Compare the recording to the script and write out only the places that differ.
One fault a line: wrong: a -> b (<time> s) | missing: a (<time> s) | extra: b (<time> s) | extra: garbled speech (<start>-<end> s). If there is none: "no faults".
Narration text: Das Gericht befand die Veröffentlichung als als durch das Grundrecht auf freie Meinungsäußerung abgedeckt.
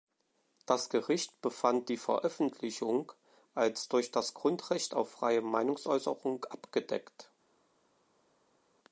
missing: als (3.9 s)